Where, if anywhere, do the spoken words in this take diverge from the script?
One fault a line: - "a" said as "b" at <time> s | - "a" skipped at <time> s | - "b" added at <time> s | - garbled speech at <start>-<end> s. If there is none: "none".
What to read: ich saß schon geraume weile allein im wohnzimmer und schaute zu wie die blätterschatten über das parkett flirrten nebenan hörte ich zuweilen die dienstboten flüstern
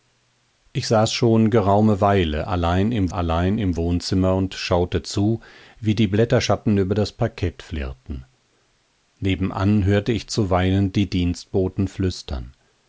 - "allein im" added at 3.1 s